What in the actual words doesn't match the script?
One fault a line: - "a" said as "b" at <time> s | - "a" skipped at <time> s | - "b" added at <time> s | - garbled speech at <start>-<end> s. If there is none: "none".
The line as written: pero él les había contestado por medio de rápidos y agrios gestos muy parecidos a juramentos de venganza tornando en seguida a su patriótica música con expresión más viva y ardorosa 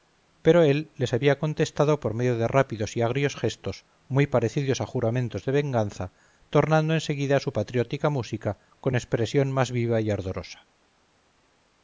none